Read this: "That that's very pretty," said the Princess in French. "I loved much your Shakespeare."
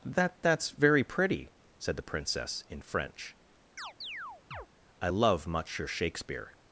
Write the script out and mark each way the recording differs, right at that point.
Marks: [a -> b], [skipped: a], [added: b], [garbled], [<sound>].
"That that's very pretty," said the Princess in French. [chirp] "I [loved -> love] much your Shakespeare."